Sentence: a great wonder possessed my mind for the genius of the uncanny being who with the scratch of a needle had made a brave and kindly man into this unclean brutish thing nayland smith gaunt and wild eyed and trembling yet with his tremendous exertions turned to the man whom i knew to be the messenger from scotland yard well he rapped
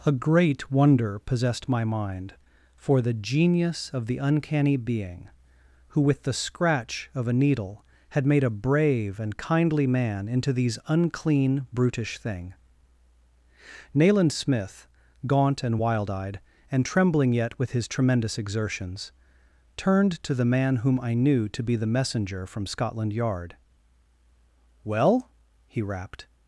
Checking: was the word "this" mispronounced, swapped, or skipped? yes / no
yes